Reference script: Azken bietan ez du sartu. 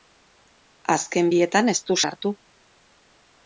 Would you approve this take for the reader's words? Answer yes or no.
yes